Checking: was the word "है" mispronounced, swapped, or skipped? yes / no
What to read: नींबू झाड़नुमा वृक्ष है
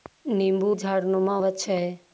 no